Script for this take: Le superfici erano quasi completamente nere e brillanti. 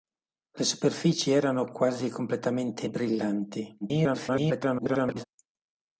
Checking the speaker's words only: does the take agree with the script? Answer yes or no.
no